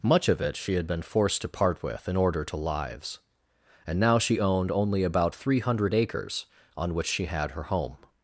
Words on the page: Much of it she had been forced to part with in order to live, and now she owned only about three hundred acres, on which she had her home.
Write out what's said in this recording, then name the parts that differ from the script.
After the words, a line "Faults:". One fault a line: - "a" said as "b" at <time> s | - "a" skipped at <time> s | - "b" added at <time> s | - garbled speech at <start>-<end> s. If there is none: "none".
Much of it she had been forced to part with in order to lives, and now she owned only about three hundred acres, on which she had her home.
Faults:
- "live" said as "lives" at 2.6 s